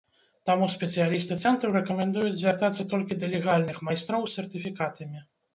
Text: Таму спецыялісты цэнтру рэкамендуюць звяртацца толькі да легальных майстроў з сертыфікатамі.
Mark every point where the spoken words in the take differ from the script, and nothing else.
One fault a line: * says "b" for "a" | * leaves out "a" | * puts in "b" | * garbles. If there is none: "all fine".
all fine